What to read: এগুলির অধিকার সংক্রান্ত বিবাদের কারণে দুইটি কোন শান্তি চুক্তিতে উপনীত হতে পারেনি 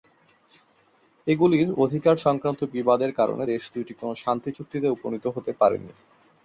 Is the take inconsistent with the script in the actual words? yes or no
yes